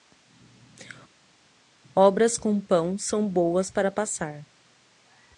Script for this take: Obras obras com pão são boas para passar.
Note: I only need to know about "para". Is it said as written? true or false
true